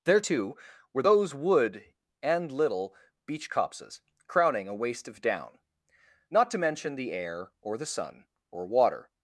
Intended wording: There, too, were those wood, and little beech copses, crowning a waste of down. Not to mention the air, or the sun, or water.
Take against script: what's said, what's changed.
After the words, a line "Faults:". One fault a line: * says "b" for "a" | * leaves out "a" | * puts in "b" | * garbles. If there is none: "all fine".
There, too, were those wood, and little beech copses, crowning a waste of down. Not to mention the air, or the sun, or water.
Faults:
all fine